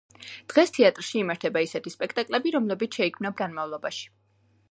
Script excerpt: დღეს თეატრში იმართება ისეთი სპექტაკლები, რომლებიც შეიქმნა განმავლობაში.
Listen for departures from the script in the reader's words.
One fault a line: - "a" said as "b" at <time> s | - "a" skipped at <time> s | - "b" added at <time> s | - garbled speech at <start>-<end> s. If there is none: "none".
none